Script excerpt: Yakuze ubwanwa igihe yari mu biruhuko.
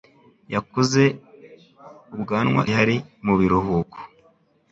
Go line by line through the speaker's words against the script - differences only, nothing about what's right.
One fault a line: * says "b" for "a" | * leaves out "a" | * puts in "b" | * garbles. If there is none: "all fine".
* leaves out "igihe"